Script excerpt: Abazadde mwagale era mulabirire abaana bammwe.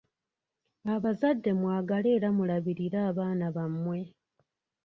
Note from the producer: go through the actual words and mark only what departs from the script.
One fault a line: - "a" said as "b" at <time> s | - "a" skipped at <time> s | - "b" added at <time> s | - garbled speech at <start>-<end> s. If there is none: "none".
none